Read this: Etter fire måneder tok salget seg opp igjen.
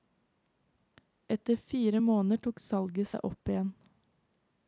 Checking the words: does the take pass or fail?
pass